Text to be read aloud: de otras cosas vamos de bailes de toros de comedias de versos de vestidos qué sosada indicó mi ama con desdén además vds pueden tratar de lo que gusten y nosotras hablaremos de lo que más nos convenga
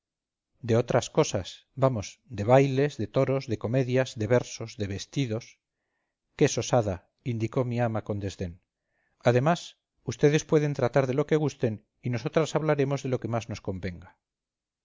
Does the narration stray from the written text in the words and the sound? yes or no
no